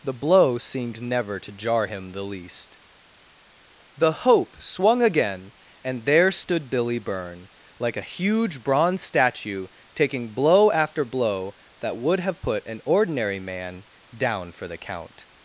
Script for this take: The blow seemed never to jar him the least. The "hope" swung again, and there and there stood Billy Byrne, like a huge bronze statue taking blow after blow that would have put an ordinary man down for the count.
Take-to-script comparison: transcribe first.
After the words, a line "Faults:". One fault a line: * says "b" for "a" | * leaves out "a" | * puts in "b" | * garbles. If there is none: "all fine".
The blow seemed never to jar him the least. The "hope" swung again, and there stood Billy Byrne, like a huge bronze statue taking blow after blow that would have put an ordinary man down for the count.
Faults:
* leaves out "and there"